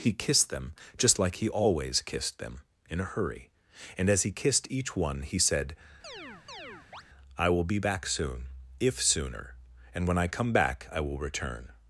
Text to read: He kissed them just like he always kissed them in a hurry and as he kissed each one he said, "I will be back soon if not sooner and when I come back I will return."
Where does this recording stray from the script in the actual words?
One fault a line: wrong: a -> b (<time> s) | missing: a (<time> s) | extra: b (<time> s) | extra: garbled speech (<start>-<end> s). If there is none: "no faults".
missing: not (9.0 s)